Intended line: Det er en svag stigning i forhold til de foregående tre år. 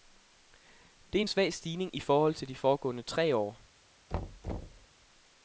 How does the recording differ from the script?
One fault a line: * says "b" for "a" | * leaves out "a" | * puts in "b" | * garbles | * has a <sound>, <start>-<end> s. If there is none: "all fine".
* has a thud, 4.1-4.9 s